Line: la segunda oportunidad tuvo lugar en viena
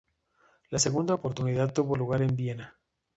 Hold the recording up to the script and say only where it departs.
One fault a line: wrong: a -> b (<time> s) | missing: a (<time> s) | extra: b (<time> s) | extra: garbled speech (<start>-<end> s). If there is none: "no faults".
no faults